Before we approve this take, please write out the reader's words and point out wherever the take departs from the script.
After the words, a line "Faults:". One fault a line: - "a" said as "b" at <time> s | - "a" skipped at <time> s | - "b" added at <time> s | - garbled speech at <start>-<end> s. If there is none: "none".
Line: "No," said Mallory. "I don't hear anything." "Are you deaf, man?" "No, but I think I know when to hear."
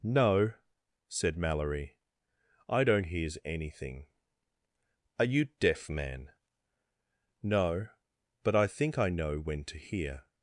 "No," said Mallory. "I don't hears anything." "Are you deaf, man?" "No, but I think I know when to hear."
Faults:
- "hear" said as "hears" at 3.0 s